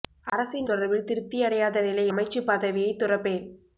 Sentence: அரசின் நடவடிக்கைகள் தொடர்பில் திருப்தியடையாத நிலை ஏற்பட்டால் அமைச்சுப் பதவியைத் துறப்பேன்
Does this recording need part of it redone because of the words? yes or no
yes